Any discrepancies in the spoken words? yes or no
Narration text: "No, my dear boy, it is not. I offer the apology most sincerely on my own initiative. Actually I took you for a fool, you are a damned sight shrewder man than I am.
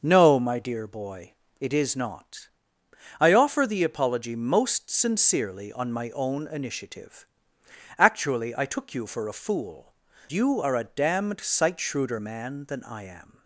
no